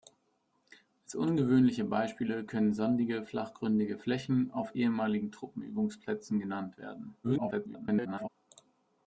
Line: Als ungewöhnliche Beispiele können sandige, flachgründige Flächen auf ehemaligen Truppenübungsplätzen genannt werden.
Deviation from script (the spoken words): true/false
true